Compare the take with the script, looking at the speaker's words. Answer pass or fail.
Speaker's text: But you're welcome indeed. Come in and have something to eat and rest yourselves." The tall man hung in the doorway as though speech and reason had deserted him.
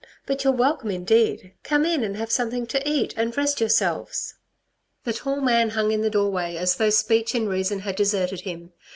pass